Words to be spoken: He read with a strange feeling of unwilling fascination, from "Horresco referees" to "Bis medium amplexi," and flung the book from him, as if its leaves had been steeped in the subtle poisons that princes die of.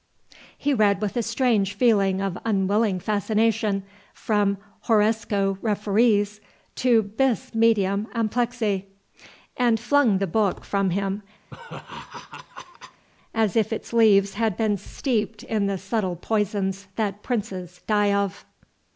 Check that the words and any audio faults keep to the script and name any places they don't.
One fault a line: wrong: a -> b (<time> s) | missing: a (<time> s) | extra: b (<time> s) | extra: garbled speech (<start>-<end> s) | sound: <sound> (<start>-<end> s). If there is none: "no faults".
sound: laugh (11.5-13.0 s)